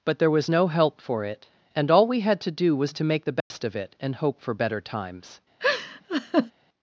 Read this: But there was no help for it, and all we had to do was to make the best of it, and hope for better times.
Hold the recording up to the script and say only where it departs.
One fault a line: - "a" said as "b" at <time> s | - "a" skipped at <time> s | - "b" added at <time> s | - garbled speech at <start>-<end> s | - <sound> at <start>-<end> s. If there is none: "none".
- dropout at 3.4-3.5 s
- laugh at 5.6-6.5 s